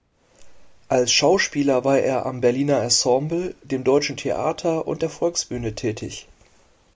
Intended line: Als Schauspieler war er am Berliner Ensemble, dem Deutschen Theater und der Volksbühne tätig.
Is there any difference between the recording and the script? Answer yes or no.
no